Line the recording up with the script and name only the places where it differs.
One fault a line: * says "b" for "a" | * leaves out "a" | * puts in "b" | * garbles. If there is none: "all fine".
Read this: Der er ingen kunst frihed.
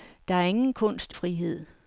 all fine